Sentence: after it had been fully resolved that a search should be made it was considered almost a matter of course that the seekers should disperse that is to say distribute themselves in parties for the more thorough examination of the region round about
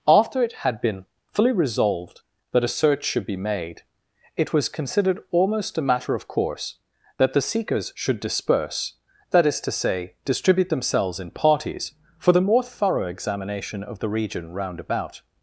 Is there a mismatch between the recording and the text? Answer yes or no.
no